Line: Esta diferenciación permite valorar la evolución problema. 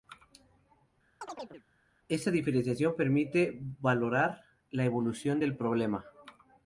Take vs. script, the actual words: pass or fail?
fail